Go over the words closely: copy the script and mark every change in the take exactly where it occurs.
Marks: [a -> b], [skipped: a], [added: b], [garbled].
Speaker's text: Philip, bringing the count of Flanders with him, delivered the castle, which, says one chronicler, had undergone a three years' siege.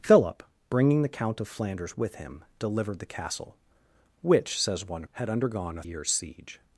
Philip, bringing the count of Flanders with him, delivered the castle, which, says one [skipped: chronicler,] had undergone a [skipped: three] years' siege.